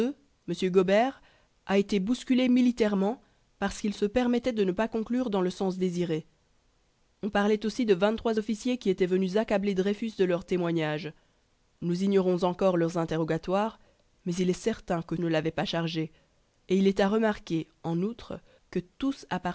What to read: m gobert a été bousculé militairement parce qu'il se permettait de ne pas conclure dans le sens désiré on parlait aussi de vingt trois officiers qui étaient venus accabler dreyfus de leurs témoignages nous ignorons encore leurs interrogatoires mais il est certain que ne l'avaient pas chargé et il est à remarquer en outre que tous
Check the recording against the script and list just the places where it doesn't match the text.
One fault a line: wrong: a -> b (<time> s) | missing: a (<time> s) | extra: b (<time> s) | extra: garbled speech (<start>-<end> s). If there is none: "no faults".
no faults